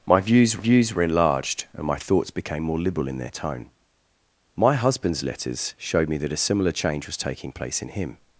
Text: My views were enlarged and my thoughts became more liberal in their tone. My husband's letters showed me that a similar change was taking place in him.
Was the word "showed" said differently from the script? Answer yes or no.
no